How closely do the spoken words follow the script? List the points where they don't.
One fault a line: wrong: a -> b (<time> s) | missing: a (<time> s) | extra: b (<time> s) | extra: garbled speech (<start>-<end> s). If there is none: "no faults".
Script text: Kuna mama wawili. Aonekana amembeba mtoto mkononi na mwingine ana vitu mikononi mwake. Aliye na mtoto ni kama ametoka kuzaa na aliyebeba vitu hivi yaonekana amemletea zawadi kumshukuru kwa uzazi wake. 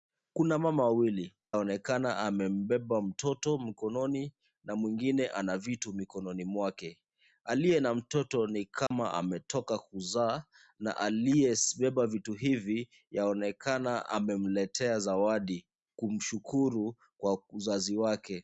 no faults